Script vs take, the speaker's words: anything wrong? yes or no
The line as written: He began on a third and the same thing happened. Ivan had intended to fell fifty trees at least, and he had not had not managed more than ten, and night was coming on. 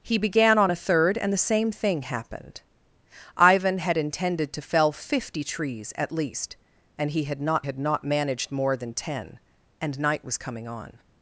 no